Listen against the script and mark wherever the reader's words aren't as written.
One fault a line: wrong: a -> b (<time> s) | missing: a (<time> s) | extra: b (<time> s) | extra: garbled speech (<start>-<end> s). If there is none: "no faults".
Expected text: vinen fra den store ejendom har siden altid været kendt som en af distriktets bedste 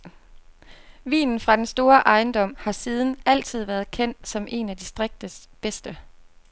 no faults